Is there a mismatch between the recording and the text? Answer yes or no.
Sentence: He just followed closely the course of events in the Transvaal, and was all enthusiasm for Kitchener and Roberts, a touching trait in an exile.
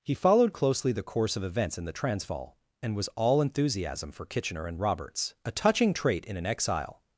yes